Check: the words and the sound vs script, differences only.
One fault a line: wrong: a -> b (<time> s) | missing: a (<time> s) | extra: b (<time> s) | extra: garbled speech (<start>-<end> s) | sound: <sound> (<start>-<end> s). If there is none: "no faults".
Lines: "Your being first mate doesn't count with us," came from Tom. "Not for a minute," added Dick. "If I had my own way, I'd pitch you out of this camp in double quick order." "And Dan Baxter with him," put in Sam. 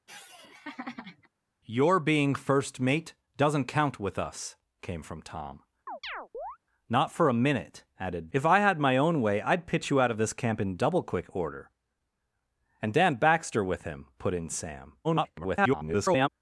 sound: laugh (0.1-1.3 s)
sound: chirp (5.9-6.6 s)
missing: Dick (8.3 s)
extra: garbled speech (15.0-16.3 s)